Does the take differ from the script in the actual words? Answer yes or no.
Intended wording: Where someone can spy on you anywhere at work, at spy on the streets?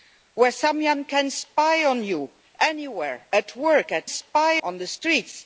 no